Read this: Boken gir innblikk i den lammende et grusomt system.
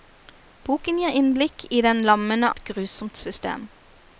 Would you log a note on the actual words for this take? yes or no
no